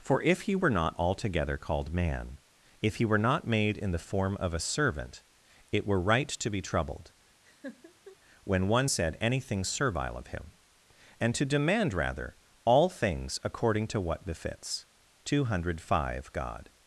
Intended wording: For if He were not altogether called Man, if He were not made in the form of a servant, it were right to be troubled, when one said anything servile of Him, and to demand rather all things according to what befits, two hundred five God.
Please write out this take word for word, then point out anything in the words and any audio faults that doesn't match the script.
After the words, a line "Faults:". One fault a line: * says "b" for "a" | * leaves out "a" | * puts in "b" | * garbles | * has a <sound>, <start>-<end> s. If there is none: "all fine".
For if He were not altogether called Man, if He were not made in the form of a servant, it were right to be troubled, when one said anything servile of Him, and to demand rather all things according to what befits, two hundred five God.
Faults:
* has a laugh, 7.5-8.2 s